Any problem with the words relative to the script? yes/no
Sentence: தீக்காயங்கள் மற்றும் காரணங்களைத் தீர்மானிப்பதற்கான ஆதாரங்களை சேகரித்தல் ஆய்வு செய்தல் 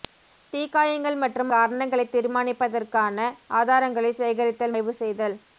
no